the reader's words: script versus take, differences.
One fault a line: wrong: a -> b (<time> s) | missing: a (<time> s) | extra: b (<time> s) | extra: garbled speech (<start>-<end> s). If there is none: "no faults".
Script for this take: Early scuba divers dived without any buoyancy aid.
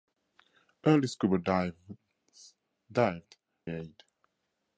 missing: without any buoyancy (3.4 s)